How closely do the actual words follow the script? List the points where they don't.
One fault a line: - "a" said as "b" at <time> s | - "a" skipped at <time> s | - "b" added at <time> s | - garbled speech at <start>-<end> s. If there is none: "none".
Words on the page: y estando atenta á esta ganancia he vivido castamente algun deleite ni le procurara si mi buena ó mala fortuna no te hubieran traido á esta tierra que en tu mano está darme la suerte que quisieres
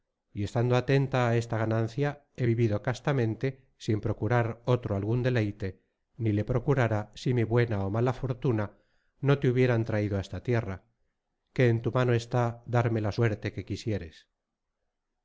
- "sin procurar otro" added at 3.8 s